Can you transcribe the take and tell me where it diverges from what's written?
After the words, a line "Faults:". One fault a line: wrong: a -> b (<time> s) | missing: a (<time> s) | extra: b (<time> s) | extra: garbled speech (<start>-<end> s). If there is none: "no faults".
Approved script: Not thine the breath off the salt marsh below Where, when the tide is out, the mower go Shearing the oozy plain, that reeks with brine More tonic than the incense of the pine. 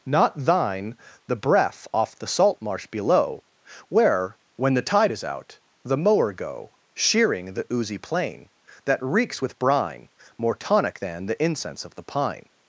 Not thine the breath off the salt marsh below Where, when the tide is out, the mower go Shearing the oozy plain, that reeks with brine More tonic than the incense of the pine.
Faults:
no faults